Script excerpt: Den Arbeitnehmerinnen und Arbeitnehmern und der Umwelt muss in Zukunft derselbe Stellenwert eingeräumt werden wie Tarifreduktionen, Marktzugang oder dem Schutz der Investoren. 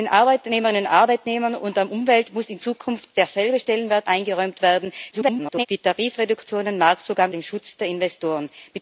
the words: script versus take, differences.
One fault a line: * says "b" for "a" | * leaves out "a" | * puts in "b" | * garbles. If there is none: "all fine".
* garbles
* leaves out "oder"